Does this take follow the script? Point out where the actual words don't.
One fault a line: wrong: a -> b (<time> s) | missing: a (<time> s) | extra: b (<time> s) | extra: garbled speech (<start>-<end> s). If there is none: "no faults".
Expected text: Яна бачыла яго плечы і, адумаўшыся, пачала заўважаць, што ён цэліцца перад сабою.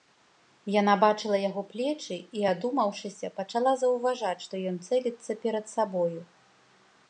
no faults